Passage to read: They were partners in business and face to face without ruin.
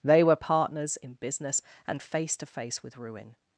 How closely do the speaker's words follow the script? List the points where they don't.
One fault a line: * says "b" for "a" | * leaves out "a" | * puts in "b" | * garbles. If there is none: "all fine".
* says "with" for "without"